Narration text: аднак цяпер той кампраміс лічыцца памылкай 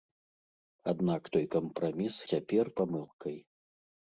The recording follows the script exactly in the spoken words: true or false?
false